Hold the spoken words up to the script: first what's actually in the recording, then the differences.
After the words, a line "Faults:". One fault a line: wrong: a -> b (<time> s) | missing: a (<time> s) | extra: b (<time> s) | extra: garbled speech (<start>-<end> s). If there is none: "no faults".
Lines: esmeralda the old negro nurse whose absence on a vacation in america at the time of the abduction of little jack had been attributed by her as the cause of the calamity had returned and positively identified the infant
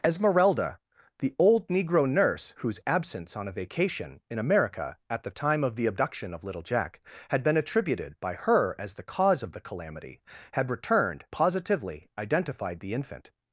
esmeralda the old negro nurse whose absence on a vacation in america at the time of the abduction of little jack had been attributed by her as the cause of the calamity had returned positively identified the infant
Faults:
missing: and (11.3 s)